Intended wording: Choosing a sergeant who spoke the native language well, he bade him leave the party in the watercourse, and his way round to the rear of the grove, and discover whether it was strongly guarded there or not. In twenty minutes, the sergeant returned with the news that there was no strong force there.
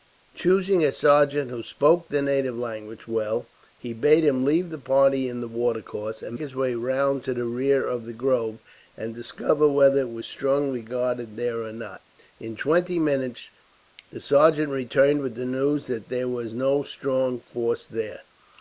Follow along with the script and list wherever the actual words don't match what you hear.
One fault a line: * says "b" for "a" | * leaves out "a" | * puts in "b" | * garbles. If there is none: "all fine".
all fine